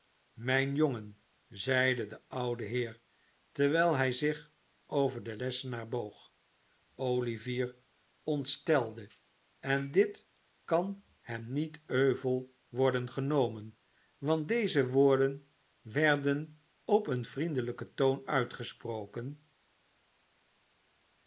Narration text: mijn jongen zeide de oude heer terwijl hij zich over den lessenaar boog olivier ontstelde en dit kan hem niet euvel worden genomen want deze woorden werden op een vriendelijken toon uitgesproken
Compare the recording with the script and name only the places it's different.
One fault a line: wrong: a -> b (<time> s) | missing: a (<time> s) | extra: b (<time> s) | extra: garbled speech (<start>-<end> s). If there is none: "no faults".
no faults